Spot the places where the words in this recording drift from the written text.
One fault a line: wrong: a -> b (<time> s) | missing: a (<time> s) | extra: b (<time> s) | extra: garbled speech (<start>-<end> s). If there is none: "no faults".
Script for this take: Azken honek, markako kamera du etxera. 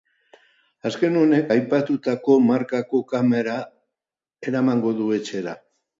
extra: aipatutako (1.5 s)
extra: eramango (4.5 s)